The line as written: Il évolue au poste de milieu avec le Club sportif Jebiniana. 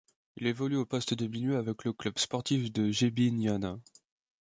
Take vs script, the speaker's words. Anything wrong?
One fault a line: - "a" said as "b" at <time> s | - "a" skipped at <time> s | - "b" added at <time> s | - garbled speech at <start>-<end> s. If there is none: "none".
- "de" added at 2.7 s